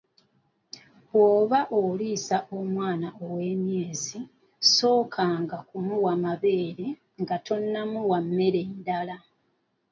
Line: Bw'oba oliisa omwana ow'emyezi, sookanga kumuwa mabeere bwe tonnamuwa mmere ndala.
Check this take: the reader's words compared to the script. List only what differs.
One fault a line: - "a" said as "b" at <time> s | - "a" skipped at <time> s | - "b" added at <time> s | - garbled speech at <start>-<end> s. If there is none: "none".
- "bwe" said as "nga" at 7.2 s